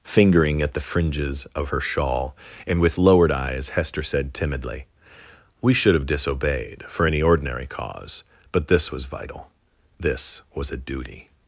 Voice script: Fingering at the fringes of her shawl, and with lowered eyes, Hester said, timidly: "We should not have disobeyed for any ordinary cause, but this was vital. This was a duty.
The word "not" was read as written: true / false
false